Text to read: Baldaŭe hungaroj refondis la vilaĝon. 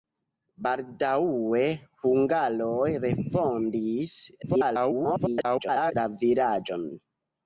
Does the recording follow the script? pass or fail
fail